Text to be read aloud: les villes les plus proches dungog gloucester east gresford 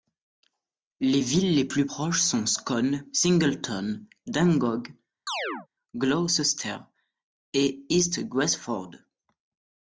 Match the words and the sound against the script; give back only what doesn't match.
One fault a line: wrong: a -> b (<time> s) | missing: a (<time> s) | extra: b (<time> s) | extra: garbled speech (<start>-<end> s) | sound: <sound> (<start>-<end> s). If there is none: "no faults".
extra: sont scone singleton (2.2 s)
sound: chirp (5.3-5.7 s)
extra: et (7.5 s)